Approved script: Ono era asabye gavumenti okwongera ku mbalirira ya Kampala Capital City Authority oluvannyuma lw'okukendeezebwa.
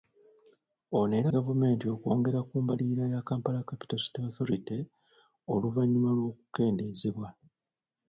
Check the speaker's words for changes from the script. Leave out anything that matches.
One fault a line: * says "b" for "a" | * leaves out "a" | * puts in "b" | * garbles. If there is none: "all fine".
* leaves out "asabye"